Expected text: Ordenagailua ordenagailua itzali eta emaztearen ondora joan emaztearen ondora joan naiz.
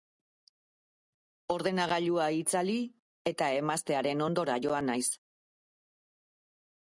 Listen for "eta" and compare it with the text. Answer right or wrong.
right